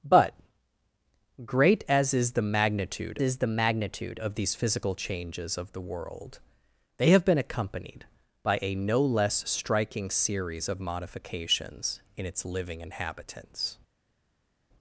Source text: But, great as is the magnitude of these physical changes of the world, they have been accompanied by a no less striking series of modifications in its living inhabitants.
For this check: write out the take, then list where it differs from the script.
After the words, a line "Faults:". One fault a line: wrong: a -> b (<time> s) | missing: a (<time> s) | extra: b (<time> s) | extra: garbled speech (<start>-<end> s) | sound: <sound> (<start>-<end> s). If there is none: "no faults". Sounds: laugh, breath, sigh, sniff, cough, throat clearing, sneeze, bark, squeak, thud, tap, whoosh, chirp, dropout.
But, great as is the magnitude is the magnitude of these physical changes of the world, they have been accompanied by a no less striking series of modifications in its living inhabitants.
Faults:
extra: is the magnitude (3.2 s)